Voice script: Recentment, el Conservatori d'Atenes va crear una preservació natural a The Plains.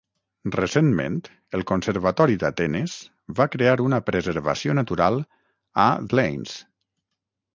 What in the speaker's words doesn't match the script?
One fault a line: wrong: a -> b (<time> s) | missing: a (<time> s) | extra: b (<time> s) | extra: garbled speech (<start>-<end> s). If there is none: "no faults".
missing: The (5.9 s)